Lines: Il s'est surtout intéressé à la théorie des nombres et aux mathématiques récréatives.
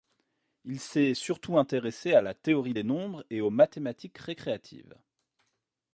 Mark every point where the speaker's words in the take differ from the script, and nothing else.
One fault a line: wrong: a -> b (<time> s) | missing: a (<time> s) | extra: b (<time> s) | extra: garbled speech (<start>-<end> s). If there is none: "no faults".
no faults